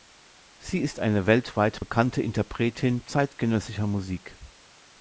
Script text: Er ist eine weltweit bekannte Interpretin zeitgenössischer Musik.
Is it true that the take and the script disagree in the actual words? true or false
true